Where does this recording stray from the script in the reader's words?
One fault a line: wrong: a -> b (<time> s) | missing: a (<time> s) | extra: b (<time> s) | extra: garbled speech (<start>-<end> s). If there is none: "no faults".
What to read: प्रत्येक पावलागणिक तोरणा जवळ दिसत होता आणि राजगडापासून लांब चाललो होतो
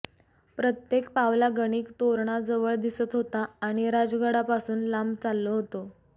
no faults